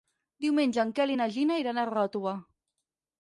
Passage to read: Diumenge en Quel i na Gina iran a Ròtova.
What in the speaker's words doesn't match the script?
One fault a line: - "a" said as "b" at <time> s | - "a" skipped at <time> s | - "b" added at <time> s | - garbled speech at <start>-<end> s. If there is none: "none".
none